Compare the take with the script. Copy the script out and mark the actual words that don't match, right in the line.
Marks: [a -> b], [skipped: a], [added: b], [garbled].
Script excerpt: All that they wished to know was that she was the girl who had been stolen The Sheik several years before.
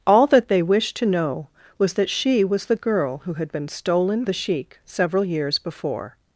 All that they wished to know was that she was the girl who had been stolen The Sheik several years before.